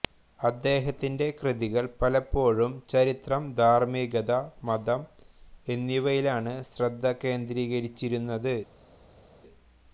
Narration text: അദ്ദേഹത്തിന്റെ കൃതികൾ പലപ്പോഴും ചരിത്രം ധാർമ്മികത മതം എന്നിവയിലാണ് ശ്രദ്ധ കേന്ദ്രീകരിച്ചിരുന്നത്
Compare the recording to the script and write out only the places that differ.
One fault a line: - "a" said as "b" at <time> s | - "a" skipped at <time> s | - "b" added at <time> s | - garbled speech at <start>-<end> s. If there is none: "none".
none